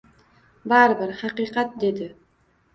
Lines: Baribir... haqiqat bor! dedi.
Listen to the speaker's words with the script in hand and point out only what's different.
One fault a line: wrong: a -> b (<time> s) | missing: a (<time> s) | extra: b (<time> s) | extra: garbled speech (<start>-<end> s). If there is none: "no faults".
missing: bor (1.7 s)